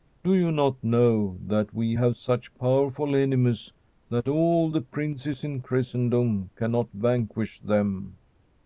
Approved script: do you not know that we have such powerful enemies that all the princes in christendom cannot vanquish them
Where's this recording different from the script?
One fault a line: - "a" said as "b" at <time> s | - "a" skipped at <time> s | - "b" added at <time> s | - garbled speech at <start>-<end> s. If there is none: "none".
none